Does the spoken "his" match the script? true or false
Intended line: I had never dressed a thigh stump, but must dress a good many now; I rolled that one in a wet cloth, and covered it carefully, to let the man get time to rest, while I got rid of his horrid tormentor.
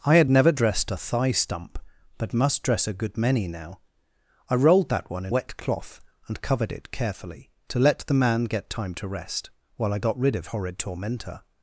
false